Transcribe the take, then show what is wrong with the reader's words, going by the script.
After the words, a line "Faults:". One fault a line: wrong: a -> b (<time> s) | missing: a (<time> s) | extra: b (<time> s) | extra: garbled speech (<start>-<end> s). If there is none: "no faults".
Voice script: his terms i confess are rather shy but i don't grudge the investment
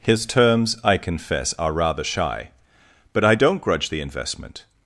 his terms i confess are rather shy but i don't grudge the investment
Faults:
no faults